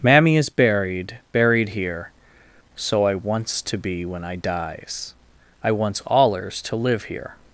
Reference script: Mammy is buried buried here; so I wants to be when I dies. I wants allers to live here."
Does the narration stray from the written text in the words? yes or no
no